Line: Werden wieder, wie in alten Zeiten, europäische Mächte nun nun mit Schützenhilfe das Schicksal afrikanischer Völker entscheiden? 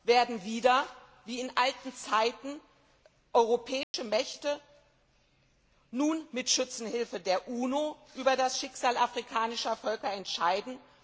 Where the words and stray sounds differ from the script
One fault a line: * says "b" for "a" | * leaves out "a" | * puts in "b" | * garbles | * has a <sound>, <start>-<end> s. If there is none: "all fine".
* has a dropout, 3.8-3.9 s
* leaves out "nun"
* puts in "der UNO über"